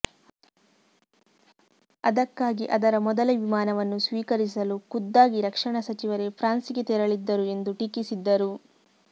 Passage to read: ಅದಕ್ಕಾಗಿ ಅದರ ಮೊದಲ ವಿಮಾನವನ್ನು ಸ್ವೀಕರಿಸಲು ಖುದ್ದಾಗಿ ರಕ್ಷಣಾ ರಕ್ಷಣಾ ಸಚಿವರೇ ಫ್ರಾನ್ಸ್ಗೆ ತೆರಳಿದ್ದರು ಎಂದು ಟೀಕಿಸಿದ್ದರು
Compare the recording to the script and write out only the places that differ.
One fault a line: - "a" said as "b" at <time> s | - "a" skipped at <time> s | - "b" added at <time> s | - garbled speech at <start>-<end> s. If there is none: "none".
- "ರಕ್ಷಣಾ" skipped at 5.8 s